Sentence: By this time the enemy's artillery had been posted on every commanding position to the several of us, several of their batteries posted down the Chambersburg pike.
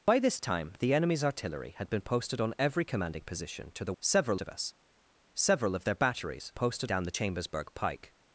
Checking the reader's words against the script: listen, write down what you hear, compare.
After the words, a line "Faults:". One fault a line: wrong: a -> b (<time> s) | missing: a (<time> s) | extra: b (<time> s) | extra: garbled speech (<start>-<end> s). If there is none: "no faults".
By this time the enemy's artillery had been posted on every commanding position to the several of us, several of their batteries posted down the Chambersburg pike.
Faults:
no faults